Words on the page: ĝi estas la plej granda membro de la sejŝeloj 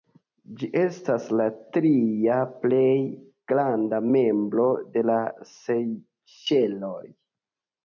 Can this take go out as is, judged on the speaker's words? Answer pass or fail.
fail